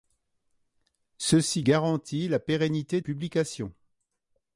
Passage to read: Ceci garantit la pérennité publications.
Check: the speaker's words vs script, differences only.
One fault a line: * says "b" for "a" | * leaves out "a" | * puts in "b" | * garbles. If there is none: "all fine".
all fine